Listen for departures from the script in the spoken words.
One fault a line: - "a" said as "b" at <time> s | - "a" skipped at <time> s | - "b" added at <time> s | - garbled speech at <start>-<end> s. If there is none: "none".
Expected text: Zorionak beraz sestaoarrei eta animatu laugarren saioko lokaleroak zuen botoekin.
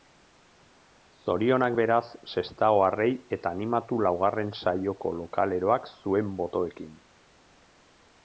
none